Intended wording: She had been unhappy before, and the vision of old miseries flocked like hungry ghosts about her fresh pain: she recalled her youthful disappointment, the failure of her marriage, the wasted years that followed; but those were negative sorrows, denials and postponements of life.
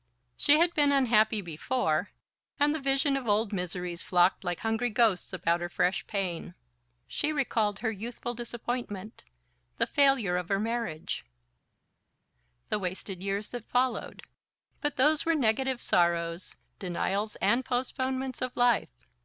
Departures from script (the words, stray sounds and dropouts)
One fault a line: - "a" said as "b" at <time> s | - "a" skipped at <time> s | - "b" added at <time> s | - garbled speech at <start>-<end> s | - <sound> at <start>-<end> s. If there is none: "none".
none